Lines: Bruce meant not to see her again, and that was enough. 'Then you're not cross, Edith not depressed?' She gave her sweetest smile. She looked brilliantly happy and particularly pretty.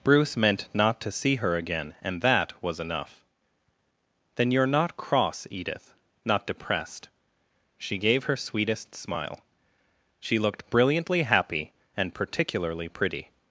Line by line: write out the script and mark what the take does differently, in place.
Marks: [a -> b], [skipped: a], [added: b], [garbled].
Bruce meant not to see her again, and that was enough. 'Then you're not cross, Edith not depressed?' She gave her sweetest smile. She looked brilliantly happy and particularly pretty.